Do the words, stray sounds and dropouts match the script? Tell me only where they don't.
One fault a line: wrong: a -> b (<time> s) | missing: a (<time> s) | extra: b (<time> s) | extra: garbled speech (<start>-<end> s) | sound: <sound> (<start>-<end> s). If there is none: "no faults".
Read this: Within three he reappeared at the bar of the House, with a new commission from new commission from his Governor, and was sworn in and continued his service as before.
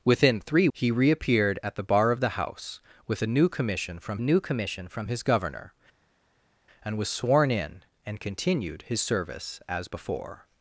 no faults